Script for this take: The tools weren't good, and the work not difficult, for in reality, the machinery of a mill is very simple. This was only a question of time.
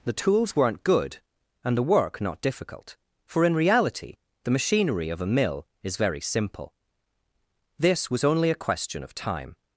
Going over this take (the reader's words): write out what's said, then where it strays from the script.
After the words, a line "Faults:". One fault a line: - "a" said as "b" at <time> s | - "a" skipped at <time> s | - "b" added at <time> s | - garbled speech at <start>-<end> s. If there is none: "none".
The tools weren't good, and the work not difficult, for in reality, the machinery of a mill is very simple. This was only a question of time.
Faults:
none